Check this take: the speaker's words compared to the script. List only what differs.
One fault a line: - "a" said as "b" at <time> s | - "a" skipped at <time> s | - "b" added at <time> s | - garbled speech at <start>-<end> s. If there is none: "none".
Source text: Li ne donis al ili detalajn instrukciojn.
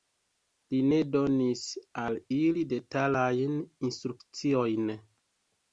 none